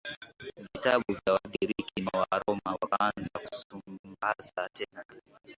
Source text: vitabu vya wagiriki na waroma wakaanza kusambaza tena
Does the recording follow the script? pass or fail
pass